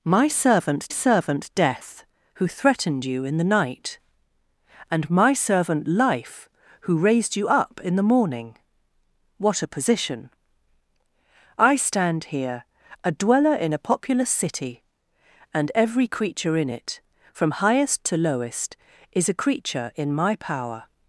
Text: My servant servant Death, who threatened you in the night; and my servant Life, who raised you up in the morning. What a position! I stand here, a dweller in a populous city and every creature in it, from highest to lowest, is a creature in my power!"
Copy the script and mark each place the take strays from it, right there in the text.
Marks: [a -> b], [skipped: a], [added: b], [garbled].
My servant servant Death, who threatened you in the night; and my servant Life, who raised you up in the morning. What a position! I stand here, a dweller in a populous city and every creature in it, from highest to lowest, is a creature in my power!"